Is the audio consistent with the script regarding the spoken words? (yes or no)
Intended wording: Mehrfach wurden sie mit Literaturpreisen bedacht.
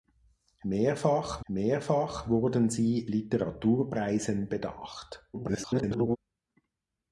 no